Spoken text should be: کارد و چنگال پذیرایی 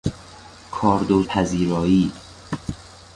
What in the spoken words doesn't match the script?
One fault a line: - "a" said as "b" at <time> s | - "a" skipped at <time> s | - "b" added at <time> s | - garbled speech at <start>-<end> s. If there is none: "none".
- "چنگال" skipped at 1.2 s